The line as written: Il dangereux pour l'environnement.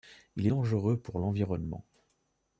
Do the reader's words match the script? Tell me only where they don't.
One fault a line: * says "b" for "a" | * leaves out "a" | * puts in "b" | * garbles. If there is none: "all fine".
all fine